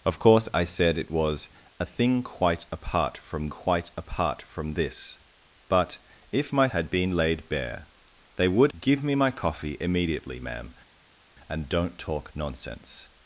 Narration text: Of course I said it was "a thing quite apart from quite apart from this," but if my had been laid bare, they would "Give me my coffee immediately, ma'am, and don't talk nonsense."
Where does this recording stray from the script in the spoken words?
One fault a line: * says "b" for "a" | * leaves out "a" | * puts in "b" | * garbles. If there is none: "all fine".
all fine